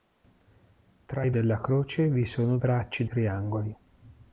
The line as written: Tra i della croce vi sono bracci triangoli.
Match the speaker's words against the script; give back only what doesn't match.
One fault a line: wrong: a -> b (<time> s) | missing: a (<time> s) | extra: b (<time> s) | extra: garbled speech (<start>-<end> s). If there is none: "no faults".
no faults